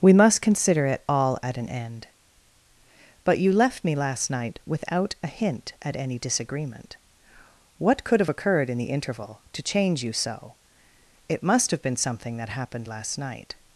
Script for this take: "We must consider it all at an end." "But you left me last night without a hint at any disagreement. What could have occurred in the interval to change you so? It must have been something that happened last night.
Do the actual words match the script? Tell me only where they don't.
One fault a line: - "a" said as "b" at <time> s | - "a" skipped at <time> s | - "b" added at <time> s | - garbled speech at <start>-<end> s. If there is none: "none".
none